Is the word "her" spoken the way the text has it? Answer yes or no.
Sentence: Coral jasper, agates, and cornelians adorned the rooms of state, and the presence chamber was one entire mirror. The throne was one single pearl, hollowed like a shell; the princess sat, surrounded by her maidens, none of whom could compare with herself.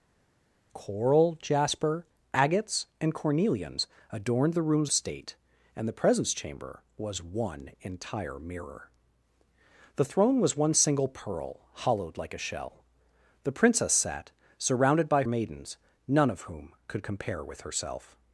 no